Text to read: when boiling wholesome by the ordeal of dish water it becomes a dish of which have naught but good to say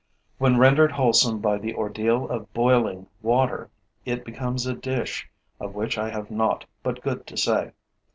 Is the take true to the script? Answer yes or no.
no